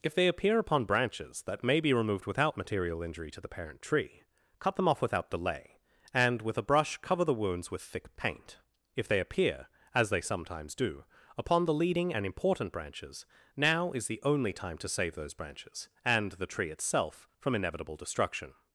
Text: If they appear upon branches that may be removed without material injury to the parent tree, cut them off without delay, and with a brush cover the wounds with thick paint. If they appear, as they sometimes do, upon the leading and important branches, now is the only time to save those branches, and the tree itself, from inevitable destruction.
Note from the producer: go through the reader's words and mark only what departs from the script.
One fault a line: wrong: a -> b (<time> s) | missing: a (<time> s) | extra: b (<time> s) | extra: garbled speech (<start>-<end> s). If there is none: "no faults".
no faults